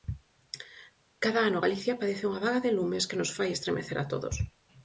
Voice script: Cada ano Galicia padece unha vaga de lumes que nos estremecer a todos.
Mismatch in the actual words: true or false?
true